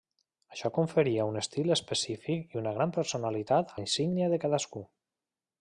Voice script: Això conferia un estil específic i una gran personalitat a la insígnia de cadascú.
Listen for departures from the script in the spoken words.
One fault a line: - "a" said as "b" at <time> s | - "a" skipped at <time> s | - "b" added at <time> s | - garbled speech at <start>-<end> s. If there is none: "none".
- "a" skipped at 3.8 s